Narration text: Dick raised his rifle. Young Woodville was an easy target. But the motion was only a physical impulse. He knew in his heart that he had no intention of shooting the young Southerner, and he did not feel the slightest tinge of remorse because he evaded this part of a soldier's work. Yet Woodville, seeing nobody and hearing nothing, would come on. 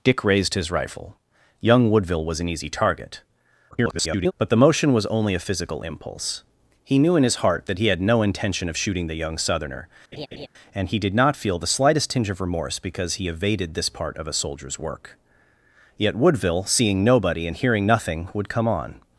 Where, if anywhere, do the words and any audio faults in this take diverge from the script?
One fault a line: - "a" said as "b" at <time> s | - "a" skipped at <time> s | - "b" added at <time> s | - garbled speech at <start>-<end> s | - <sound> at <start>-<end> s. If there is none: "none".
- garbled speech at 3.7-4.3 s
- laugh at 10.1-10.5 s